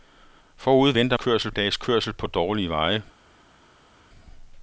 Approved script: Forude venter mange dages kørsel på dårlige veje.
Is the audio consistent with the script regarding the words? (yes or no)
no